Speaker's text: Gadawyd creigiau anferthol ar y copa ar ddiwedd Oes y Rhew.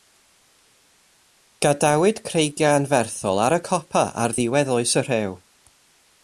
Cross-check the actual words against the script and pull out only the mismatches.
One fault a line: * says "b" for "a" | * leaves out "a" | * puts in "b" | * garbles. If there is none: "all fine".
all fine